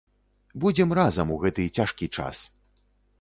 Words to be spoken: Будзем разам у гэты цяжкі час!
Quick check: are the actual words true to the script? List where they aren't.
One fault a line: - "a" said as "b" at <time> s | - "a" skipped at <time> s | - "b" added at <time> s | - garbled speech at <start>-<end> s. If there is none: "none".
none